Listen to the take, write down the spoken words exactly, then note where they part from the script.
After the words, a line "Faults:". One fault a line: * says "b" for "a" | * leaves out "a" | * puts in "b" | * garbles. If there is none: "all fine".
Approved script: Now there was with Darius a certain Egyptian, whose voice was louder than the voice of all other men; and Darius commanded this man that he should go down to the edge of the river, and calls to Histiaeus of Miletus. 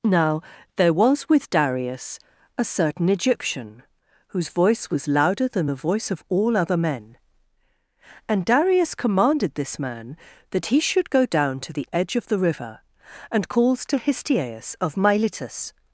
Now there was with Darius a certain Egyptian, whose voice was louder than the voice of all other men; and Darius commanded this man that he should go down to the edge of the river, and calls to Histiaeus of Miletus.
Faults:
all fine